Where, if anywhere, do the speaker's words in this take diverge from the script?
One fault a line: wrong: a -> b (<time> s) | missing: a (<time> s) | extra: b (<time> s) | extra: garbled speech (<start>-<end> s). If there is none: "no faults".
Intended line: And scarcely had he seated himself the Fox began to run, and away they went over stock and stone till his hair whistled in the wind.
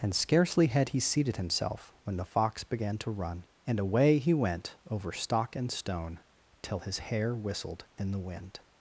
extra: when (2.0 s)
wrong: they -> he (4.2 s)